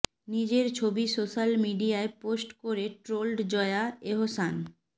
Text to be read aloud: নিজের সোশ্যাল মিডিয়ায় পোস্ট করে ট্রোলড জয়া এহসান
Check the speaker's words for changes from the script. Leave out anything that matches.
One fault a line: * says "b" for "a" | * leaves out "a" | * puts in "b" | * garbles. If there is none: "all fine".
* puts in "ছবি"